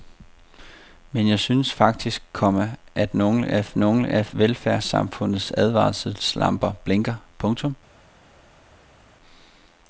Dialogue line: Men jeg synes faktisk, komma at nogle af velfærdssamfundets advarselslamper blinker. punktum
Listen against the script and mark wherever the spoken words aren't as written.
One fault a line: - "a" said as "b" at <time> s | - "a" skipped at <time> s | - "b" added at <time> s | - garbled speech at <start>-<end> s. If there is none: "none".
- "nogle af" added at 3.7 s